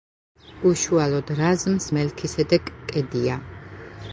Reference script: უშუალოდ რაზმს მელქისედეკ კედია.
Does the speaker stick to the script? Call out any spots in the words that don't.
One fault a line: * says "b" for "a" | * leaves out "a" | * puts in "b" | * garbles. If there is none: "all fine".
all fine